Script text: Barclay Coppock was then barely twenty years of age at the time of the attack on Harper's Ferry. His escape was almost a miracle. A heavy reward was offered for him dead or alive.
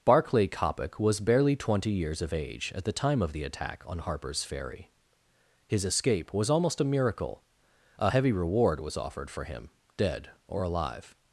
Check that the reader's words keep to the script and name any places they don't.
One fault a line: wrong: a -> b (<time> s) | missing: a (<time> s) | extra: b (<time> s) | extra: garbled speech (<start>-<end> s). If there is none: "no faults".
missing: then (1.2 s)